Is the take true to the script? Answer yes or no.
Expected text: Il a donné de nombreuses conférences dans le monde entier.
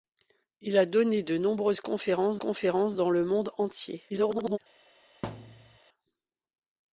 no